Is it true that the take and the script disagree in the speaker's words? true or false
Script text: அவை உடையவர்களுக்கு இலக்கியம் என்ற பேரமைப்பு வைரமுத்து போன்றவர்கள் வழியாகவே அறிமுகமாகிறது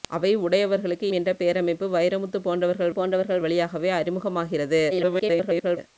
true